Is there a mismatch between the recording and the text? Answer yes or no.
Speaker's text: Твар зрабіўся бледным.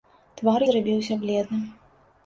no